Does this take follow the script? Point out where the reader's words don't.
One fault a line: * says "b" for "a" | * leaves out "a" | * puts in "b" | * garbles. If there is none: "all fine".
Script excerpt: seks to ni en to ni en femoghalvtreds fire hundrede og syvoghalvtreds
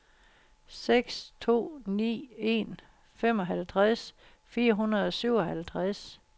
* leaves out "to ni en"